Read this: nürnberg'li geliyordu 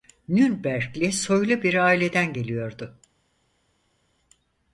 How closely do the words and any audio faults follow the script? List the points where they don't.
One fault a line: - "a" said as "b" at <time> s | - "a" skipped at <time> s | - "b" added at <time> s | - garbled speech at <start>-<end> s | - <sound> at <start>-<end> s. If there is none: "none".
- "soylu bir aileden" added at 1.1 s